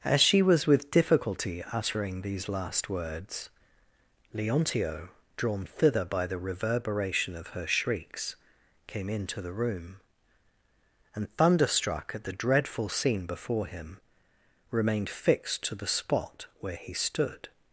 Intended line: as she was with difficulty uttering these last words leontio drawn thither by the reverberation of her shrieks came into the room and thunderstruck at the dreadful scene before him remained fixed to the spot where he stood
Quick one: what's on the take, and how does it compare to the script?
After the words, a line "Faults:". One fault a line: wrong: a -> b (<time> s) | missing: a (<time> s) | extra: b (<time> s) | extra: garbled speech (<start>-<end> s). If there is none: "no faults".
as she was with difficulty uttering these last words leontio drawn thither by the reverberation of her shrieks came into the room and thunderstruck at the dreadful scene before him remained fixed to the spot where he stood
Faults:
no faults